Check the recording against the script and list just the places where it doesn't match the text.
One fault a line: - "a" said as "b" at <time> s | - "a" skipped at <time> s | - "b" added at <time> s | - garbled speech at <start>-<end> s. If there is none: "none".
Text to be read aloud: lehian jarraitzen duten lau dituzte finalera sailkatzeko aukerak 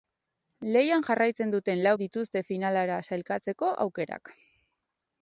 none